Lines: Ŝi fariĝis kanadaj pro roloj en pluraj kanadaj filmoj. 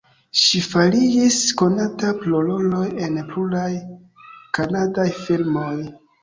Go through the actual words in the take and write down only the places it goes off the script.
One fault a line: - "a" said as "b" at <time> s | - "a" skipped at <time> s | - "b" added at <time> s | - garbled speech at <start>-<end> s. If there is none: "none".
- "kanadaj" said as "konata" at 1.6 s